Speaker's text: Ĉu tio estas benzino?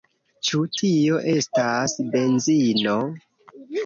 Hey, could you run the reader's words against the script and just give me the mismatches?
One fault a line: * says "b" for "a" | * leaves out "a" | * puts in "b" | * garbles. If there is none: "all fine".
all fine